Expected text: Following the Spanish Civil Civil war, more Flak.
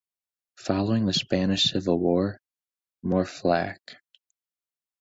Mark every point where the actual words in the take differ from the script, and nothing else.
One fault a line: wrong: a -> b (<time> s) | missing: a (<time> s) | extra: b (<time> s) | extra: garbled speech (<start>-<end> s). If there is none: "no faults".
missing: Civil (2.0 s)